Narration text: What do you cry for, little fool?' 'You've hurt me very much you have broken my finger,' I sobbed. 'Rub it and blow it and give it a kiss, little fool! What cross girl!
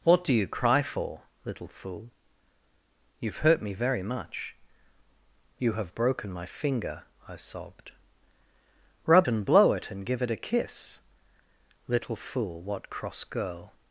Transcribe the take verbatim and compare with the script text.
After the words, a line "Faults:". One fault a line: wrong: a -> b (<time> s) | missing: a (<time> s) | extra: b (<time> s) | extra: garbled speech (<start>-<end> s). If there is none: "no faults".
What do you cry for, little fool?' 'You've hurt me very much you have broken my finger,' I sobbed. 'Rub and blow it and give it a kiss, little fool! What cross girl!
Faults:
missing: it (9.3 s)